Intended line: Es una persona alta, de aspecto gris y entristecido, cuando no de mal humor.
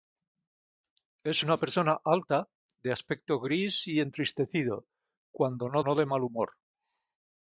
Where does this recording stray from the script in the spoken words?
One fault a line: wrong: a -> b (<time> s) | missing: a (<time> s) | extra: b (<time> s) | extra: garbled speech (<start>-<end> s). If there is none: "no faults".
extra: no (5.8 s)